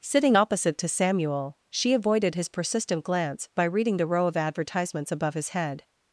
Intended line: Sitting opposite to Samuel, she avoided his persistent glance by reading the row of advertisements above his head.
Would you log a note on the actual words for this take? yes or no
no